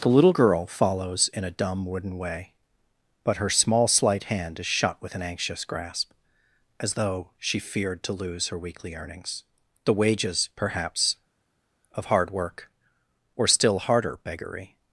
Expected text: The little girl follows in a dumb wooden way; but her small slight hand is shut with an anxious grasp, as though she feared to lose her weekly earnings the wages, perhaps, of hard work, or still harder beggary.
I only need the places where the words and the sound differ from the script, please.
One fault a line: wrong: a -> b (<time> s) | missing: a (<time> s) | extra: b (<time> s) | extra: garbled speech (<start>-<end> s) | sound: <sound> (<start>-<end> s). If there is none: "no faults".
no faults